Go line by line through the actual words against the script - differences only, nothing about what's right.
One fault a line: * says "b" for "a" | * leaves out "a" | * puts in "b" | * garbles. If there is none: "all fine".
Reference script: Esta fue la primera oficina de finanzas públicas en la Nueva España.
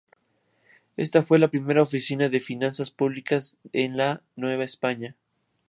all fine